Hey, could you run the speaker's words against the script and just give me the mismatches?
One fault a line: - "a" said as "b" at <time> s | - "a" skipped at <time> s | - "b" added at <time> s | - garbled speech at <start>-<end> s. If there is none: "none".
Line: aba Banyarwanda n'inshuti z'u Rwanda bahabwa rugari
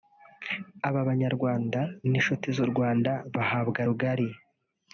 none